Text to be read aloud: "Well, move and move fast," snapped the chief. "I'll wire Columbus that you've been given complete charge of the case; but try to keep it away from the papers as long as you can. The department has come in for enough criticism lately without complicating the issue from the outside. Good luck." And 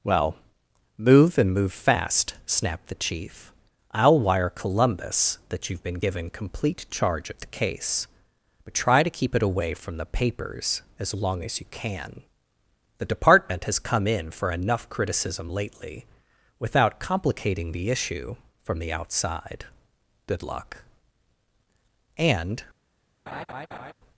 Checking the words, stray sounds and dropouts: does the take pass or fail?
fail